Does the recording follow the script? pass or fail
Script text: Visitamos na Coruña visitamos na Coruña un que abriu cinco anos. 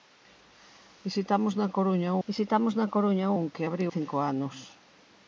pass